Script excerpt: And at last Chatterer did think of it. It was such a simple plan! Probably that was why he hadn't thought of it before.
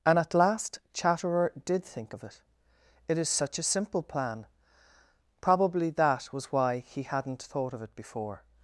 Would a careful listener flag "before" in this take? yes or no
no